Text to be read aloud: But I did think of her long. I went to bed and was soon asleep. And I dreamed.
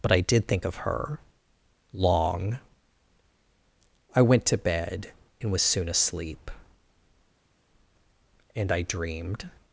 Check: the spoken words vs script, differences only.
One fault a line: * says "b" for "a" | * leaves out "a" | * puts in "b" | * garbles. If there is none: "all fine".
all fine